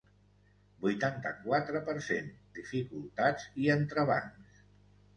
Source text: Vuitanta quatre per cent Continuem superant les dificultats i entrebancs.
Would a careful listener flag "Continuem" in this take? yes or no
yes